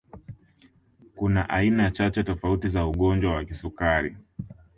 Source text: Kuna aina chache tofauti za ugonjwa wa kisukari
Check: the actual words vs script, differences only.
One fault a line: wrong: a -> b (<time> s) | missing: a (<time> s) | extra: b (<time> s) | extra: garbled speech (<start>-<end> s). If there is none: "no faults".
no faults